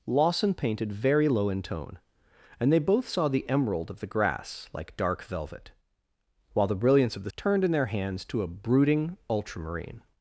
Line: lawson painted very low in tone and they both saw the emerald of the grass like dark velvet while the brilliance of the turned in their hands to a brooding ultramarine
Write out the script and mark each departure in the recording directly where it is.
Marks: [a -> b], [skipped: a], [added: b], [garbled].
lawson painted very low in tone and they both saw the emerald of the grass like dark velvet while the brilliance of the turned in their hands to a brooding ultramarine